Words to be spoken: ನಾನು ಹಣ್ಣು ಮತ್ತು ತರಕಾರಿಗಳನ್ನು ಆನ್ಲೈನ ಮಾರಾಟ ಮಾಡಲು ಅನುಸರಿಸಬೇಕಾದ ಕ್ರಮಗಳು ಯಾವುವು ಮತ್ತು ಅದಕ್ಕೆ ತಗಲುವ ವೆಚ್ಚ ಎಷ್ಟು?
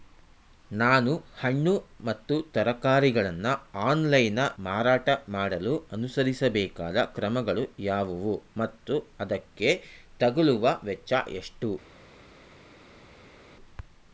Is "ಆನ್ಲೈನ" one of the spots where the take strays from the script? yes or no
no